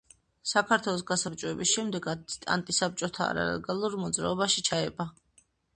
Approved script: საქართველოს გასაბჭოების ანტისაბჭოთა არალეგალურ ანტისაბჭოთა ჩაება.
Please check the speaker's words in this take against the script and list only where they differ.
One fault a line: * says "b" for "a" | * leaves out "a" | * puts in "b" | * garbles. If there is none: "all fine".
* puts in "შემდეგ"
* says "მოძრაობაში" for "ანტისაბჭოთა"